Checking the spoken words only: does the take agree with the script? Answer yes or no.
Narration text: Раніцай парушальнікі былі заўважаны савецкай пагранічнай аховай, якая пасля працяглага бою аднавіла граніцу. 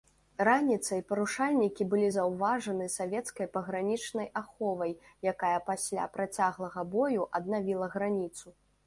yes